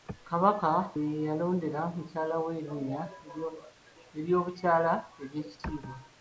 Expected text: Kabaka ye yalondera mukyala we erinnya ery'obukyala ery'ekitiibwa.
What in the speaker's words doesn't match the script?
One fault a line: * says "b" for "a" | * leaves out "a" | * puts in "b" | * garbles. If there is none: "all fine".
all fine